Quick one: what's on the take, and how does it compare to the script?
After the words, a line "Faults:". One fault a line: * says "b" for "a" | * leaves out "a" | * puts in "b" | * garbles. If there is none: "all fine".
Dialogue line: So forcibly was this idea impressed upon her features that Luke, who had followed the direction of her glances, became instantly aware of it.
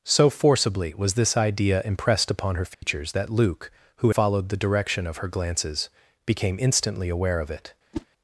So forcibly was this idea impressed upon her features that Luke, who followed the direction of her glances, became instantly aware of it.
Faults:
* leaves out "had"